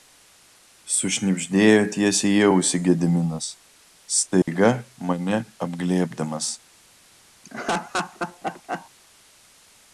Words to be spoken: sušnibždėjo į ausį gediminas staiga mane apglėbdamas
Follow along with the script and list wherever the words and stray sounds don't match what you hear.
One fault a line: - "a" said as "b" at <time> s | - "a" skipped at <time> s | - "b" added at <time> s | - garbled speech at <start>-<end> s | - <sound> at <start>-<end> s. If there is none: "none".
- "tiesiai" added at 2.0 s
- dropout at 4.4-4.5 s
- laugh at 7.4-8.9 s